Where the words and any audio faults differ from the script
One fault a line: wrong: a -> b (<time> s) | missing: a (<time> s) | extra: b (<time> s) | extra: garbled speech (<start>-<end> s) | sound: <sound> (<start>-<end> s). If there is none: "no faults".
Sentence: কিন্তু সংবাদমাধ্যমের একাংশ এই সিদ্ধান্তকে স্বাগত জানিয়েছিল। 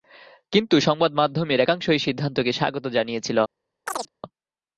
sound: chirp (3.9-4.1 s)